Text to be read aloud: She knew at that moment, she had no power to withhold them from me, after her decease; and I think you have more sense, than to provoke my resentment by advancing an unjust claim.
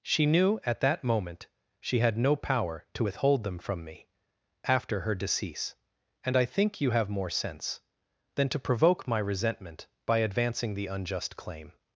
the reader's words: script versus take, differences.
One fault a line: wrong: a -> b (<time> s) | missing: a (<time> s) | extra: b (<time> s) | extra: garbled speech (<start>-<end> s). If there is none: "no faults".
wrong: an -> the (10.7 s)